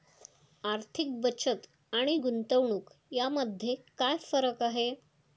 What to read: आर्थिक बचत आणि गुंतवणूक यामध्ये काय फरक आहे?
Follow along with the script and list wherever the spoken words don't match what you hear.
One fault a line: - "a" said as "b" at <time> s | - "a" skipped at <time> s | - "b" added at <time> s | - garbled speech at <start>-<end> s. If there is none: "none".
none